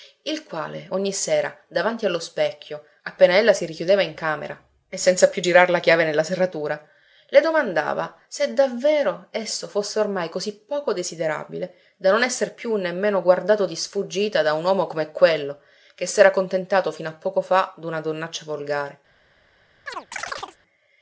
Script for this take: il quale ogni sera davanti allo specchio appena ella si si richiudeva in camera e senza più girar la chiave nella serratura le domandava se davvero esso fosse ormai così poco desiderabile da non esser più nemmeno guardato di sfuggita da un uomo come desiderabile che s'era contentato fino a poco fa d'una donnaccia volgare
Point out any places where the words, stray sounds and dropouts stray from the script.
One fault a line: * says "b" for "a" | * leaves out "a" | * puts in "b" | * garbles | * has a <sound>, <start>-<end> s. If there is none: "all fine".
* leaves out "si"
* says "quello" for "desiderabile"
* has a chirp, 19.9-20.6 s